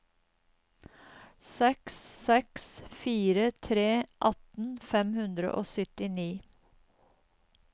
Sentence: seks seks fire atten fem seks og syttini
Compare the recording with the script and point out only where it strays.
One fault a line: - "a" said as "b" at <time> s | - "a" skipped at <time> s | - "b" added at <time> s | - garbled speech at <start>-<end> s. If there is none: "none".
- "tre" added at 3.7 s
- "seks" said as "hundre" at 5.2 s